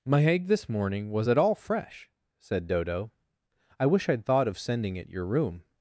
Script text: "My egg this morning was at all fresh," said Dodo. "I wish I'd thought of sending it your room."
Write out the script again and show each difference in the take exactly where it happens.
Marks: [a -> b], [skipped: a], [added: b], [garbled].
"My egg this morning was at all fresh," said Dodo. "I wish I'd thought of sending it your room."